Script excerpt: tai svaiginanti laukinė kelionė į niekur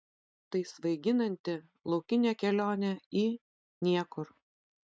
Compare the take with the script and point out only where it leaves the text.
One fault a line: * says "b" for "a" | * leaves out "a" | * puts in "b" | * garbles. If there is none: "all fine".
all fine